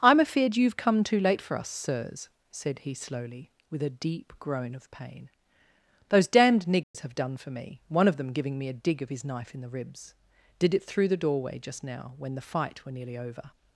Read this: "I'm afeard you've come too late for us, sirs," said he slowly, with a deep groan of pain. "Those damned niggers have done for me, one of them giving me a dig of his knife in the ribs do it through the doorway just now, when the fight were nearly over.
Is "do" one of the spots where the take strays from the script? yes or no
yes